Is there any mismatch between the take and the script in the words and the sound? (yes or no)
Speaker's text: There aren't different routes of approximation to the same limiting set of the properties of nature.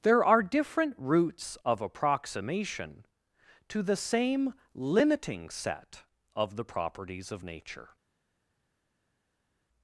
yes